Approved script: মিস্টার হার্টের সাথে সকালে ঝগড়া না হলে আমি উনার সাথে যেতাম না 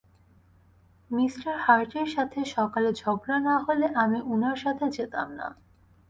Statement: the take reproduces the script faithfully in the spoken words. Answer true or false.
true